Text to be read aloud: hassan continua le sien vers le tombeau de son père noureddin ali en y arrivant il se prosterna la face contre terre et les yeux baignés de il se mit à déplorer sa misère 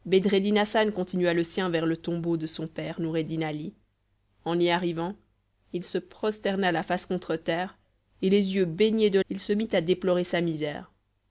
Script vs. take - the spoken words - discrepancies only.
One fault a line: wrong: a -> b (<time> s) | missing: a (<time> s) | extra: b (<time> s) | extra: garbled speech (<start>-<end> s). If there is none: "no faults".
no faults